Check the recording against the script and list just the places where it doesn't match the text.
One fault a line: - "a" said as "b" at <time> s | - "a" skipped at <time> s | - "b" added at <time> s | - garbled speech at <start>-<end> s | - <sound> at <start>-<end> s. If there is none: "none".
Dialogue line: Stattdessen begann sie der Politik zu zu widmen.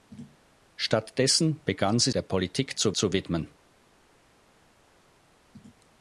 none